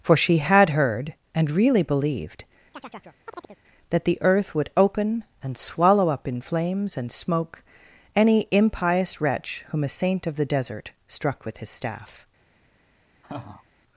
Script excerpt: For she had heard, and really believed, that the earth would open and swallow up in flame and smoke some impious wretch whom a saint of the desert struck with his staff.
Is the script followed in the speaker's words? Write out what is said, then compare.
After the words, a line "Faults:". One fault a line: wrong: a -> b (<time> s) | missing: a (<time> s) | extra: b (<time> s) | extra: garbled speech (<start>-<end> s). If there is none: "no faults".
For she had heard, and really believed, that the earth would open and swallow up in flames and smoke any impious wretch whom a saint of the desert struck with his staff.
Faults:
wrong: flame -> flames (6.4 s)
wrong: some -> any (8.1 s)